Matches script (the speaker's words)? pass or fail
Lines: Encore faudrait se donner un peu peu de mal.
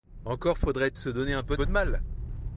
pass